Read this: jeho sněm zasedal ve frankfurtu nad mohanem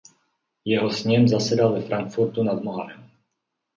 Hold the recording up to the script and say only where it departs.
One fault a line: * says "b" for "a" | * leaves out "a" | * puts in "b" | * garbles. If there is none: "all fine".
all fine